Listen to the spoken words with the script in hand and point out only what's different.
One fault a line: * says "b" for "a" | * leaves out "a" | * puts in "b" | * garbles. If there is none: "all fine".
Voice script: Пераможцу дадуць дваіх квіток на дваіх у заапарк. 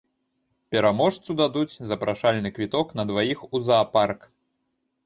* says "запрашальны" for "дваіх"